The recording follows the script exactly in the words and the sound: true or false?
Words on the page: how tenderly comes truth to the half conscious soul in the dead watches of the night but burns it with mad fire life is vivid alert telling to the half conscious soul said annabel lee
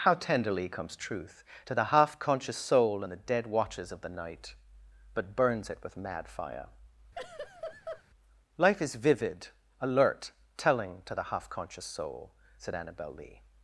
false